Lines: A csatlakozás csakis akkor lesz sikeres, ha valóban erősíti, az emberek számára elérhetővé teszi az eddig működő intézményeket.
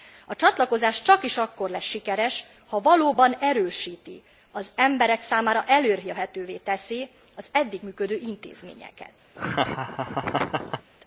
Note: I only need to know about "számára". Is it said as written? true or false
true